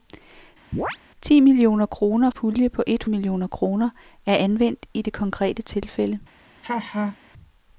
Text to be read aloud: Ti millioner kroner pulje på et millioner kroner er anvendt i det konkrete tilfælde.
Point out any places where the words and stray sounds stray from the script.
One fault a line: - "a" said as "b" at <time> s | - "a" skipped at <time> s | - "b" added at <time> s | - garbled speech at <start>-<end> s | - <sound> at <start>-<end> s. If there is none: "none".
- chirp at 0.7-1.0 s
- laugh at 6.6-7.2 s